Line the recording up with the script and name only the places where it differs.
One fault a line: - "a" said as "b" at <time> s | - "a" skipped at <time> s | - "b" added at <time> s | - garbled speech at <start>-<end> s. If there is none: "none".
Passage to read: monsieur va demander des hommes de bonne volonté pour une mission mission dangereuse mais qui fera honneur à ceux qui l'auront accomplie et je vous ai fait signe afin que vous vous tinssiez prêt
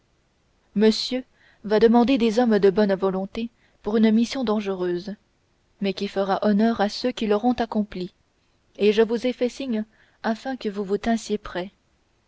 - "mission" skipped at 4.4 s